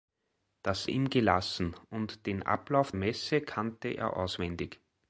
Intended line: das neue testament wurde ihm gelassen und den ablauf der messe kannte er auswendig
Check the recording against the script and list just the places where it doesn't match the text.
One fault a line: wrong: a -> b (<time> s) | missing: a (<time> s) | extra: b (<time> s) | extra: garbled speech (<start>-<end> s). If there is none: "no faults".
missing: neue testament wurde (0.9 s)
missing: der (2.9 s)